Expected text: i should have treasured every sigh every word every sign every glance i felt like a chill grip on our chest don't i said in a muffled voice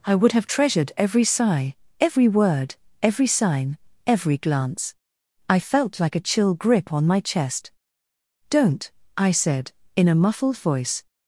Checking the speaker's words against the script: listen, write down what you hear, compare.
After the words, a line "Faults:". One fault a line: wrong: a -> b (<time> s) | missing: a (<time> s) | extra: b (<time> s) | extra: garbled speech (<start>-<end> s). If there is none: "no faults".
i would have treasured every sigh every word every sign every glance i felt like a chill grip on my chest don't i said in a muffled voice
Faults:
wrong: should -> would (0.1 s)
wrong: our -> my (7.1 s)